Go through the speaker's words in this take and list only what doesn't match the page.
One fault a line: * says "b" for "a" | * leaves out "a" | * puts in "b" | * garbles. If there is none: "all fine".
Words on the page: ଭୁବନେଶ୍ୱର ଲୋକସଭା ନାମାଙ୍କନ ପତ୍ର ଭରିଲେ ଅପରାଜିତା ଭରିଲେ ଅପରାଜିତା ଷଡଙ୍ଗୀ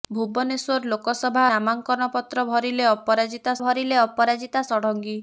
all fine